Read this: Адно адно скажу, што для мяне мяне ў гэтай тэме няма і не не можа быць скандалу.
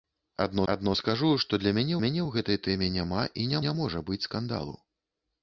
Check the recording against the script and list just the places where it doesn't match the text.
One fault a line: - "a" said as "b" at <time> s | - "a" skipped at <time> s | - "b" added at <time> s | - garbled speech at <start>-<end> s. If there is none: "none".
none